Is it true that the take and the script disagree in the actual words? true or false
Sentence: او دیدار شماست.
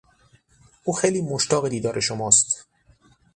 true